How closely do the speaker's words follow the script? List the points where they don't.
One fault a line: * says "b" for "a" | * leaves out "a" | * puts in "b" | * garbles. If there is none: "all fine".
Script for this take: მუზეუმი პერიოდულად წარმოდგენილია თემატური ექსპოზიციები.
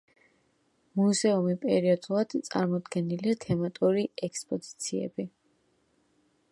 all fine